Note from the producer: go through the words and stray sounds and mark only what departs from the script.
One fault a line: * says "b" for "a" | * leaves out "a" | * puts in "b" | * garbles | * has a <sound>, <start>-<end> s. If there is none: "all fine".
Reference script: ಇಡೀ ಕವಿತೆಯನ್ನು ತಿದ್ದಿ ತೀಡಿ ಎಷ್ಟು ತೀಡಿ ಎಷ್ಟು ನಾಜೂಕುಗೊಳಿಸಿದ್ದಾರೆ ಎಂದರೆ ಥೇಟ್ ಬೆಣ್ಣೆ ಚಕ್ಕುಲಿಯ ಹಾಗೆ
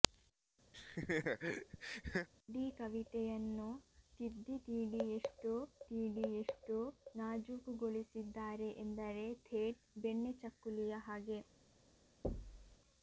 * has a laugh, 0.7-2.3 s
* has a thud, 12.2-12.8 s